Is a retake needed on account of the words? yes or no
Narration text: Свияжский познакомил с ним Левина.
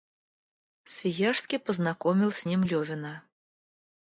no